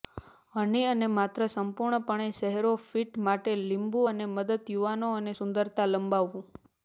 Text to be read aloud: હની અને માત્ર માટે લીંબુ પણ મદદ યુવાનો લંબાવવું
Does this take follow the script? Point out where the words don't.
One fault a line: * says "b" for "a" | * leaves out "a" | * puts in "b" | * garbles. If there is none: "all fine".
* puts in "સંપૂર્ણપણે ચહેરો ફિટ"
* says "અને" for "પણ"
* puts in "અને સુંદરતા"